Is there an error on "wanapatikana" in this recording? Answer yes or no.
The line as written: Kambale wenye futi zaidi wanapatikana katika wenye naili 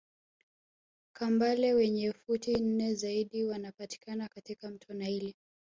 no